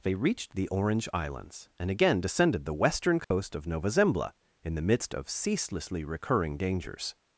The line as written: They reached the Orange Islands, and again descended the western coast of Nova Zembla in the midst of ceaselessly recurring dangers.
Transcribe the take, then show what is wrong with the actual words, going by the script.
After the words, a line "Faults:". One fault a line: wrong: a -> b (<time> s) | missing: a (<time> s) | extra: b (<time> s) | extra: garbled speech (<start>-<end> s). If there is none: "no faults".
They reached the Orange Islands, and again descended the western coast of Nova Zembla in the midst of ceaselessly recurring dangers.
Faults:
no faults